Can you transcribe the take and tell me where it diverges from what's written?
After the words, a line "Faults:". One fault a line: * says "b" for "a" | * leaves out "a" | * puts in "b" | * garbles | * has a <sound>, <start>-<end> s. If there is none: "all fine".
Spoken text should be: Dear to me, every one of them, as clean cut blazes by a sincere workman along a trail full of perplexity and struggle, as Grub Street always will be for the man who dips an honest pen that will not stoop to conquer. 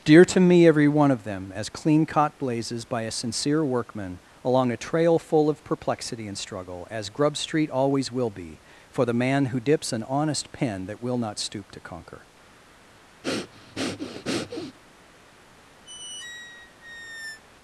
Dear to me, every one of them, as clean caught blazes by a sincere workman along a trail full of perplexity and struggle, as Grub Street always will be for the man who dips an honest pen that will not stoop to conquer.
Faults:
* says "caught" for "cut"
* has a breath, 13.2-14.8 s
* has a squeak, 15.8-17.4 s